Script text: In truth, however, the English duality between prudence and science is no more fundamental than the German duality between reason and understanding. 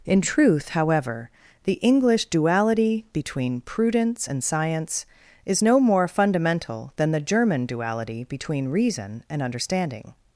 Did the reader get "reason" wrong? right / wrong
right